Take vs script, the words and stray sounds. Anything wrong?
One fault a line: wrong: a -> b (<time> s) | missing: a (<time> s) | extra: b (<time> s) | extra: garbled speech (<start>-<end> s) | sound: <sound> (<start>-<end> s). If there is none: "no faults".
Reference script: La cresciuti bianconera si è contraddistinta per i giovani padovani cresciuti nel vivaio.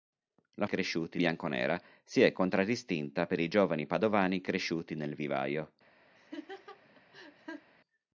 sound: laugh (6.2-7.7 s)